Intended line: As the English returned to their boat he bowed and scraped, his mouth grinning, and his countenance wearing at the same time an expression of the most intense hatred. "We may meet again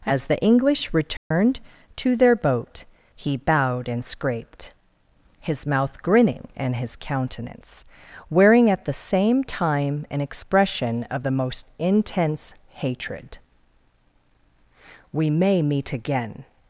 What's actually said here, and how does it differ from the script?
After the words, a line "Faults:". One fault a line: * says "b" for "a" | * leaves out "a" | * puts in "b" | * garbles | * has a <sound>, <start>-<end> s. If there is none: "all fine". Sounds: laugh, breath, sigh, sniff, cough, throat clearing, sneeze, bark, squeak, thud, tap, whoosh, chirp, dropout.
As the English returned to their boat he bowed and scraped, his mouth grinning, and his countenance wearing at the same time an expression of the most intense hatred. "We may meet again
Faults:
* has a dropout, 1.2-1.3 s